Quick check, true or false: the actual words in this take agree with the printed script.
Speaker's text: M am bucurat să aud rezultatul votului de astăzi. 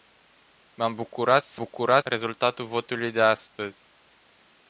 false